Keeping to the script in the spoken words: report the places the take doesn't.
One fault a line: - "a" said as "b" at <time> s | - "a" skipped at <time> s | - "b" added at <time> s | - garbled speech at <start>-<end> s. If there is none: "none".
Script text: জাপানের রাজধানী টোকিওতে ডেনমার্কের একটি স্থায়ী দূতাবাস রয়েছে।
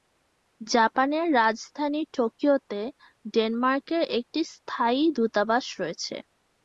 none